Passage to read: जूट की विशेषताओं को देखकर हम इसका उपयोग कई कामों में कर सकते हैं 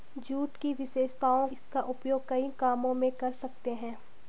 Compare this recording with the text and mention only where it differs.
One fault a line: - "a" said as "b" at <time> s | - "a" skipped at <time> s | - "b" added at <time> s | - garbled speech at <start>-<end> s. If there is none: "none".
- "को देखकर हम" skipped at 1.5 s